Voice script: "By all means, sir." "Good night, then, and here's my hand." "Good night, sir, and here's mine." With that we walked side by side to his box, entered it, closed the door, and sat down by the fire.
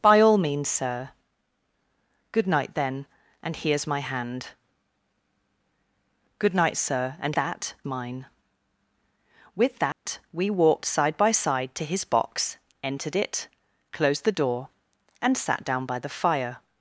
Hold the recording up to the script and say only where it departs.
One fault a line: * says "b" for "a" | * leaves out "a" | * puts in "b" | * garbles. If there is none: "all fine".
* says "that" for "here's"